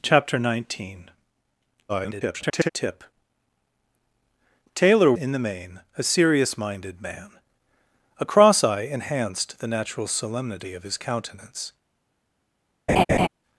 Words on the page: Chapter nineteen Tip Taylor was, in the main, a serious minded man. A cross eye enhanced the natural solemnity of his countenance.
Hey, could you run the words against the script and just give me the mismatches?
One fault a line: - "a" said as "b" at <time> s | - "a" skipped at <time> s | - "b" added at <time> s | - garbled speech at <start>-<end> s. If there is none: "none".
- garbled speech at 1.9-2.7 s
- "was" skipped at 5.1 s